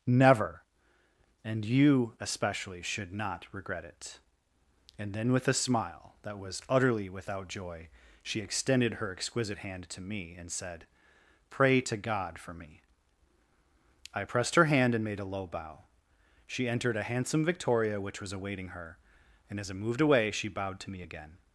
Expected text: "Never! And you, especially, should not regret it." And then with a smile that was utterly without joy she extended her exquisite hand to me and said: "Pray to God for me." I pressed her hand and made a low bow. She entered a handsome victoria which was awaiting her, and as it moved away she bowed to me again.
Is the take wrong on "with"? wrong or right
right